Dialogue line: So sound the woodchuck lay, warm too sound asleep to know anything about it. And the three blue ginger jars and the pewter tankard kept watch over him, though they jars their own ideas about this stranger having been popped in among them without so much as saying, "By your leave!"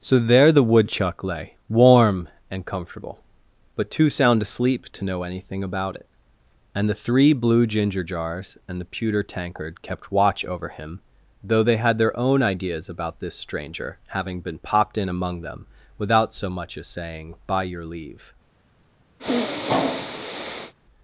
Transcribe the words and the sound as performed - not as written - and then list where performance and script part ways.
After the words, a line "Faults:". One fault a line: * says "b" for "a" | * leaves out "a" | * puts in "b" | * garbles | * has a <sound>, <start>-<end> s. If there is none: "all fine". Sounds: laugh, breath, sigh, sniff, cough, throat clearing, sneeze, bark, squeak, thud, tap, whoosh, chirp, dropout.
So there the woodchuck lay, warm and comfortable, but too sound asleep to know anything about it. And the three blue ginger jars and the pewter tankard kept watch over him, though they had their own ideas about this stranger having been popped in among them without so much as saying, "By your leave!"
Faults:
* says "there" for "sound"
* puts in "and comfortable but"
* says "had" for "jars"
* has a sniff, 19.2-20.7 s